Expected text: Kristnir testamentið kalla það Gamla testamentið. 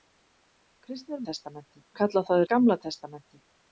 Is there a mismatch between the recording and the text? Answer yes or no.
no